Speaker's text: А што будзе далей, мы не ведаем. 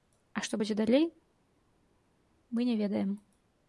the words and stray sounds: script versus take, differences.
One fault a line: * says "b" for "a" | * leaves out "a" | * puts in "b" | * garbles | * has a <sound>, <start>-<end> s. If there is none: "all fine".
all fine